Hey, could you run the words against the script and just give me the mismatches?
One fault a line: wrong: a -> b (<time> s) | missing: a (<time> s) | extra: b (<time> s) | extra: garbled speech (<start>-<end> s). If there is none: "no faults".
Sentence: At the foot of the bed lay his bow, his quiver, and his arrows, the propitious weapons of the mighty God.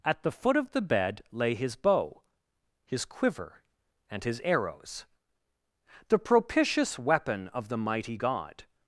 wrong: weapons -> weapon (7.0 s)